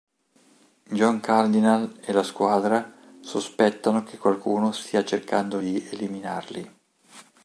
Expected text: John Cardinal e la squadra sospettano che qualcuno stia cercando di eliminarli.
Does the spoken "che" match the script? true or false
true